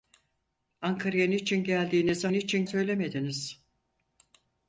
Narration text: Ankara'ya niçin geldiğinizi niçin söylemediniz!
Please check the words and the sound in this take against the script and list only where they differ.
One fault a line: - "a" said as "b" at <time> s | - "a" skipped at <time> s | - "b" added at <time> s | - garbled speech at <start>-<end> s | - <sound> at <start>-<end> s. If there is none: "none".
none